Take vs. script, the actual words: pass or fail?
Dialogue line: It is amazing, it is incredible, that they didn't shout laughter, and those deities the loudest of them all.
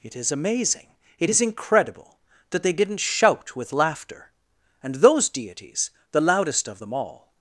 fail